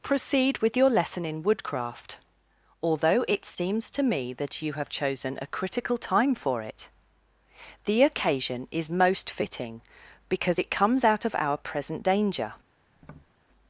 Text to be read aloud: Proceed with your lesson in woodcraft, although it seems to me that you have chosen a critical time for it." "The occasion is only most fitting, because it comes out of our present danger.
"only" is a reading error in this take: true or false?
true